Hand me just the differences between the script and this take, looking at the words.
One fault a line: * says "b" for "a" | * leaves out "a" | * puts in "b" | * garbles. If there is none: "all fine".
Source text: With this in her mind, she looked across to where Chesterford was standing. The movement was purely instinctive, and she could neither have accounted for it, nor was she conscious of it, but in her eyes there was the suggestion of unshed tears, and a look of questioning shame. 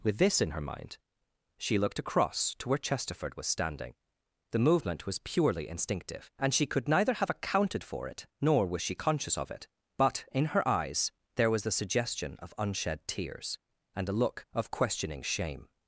all fine